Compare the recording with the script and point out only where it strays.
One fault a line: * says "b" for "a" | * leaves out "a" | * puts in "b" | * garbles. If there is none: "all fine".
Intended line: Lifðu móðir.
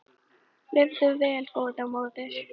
* puts in "vel góða"